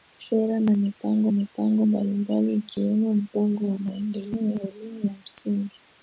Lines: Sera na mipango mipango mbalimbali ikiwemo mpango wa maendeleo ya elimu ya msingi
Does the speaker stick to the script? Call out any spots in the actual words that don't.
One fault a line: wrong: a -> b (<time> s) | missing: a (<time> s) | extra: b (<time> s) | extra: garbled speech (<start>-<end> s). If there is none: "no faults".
no faults